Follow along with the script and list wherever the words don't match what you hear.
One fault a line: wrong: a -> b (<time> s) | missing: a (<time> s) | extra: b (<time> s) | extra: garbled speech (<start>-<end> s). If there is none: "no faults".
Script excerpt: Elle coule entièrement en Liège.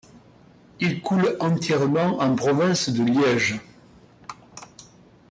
wrong: Elle -> Il (0.8 s)
extra: province de (2.4 s)